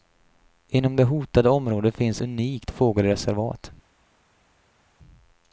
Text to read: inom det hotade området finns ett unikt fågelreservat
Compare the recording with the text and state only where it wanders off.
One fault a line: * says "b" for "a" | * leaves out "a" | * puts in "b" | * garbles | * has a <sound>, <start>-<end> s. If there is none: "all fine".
* leaves out "ett"